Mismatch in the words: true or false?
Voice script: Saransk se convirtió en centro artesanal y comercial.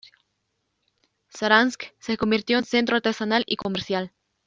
false